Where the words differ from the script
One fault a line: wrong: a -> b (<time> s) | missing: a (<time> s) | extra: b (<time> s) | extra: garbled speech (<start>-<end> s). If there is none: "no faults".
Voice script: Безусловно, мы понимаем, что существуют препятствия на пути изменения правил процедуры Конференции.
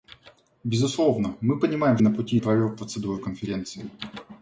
missing: что существуют препятствия (2.0 s)
missing: изменения (2.4 s)